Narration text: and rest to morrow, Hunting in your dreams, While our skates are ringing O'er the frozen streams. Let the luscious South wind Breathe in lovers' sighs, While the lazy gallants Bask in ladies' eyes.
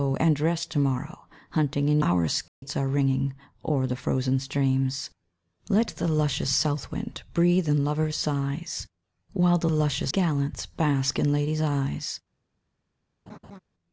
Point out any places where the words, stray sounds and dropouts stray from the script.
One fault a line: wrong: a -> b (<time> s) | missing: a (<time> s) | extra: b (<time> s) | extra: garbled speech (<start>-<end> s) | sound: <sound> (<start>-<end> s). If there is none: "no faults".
missing: your dreams While (2.0 s)
sound: dropout (2.5-2.6 s)
wrong: lazy -> luscious (9.7 s)
sound: laugh (13.3-13.6 s)